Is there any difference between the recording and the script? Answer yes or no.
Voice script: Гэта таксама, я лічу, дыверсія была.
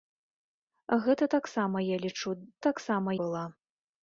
yes